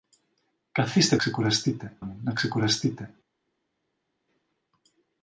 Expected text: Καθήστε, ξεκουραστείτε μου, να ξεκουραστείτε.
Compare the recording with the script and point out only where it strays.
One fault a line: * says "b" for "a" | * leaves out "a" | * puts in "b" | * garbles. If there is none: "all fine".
all fine